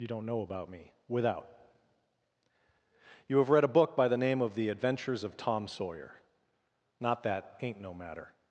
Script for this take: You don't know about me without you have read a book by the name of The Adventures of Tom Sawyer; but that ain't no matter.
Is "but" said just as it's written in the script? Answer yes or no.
no